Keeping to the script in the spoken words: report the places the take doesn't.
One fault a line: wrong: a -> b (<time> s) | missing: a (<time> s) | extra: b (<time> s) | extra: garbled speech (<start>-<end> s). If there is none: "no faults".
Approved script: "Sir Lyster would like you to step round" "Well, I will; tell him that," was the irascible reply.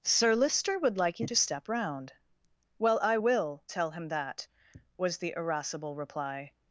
no faults